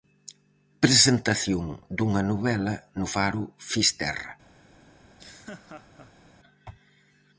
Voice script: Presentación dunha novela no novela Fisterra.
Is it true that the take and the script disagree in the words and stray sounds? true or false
true